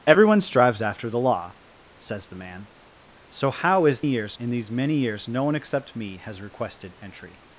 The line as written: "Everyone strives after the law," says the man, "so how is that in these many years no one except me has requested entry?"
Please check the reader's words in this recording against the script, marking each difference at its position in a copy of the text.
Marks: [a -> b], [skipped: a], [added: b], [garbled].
"Everyone strives after the law," says the man, "so how is [that -> years] in these many years no one except me has requested entry?"